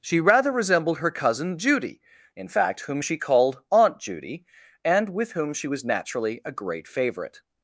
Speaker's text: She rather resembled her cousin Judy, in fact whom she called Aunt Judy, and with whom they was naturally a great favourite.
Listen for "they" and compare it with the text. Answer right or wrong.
wrong